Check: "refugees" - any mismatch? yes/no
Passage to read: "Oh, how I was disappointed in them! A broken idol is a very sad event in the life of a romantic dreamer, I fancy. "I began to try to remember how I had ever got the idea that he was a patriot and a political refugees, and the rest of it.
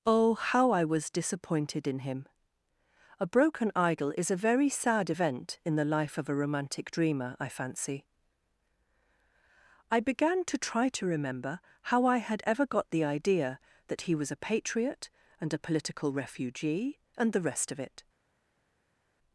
yes